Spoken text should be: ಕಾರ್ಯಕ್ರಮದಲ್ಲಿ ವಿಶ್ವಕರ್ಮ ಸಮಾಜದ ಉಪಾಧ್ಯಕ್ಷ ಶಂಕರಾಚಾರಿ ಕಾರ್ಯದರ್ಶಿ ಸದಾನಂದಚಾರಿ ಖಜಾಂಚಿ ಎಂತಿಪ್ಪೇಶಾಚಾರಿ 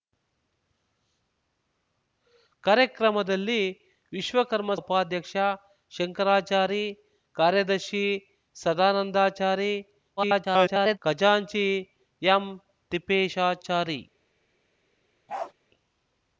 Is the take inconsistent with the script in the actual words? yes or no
yes